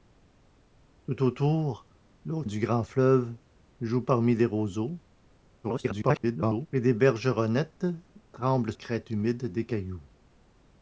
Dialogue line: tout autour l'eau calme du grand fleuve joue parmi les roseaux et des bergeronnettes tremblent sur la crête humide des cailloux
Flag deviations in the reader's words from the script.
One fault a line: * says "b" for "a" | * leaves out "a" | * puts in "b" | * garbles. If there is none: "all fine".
* leaves out "calme"
* garbles
* leaves out "sur la"